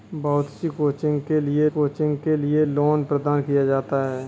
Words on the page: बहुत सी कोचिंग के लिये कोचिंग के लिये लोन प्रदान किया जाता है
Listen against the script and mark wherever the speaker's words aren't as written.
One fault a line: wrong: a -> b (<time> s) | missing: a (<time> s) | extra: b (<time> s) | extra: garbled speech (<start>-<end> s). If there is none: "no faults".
no faults